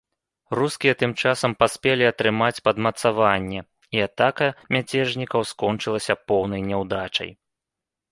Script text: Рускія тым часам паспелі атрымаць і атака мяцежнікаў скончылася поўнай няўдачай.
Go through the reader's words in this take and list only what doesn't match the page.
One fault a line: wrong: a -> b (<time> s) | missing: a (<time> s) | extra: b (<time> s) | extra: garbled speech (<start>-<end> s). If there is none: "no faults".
extra: падмацаванне (2.7 s)